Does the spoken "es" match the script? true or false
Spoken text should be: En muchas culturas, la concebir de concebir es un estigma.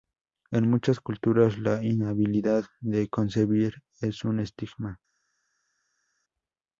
true